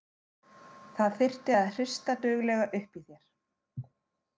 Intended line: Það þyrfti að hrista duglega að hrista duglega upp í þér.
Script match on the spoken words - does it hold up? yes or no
no